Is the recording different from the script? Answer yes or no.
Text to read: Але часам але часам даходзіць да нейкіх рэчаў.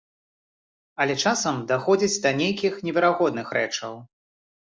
yes